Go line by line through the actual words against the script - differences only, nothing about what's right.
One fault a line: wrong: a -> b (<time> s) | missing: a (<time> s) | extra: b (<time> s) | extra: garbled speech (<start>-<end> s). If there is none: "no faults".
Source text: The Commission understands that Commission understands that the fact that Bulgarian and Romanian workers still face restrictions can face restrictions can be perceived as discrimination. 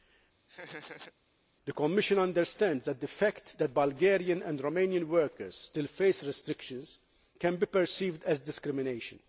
missing: Commission understands that (3.0 s)
missing: face restrictions can (7.6 s)